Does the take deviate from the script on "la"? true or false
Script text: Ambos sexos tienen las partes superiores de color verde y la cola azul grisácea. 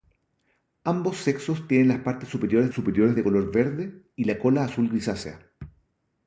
false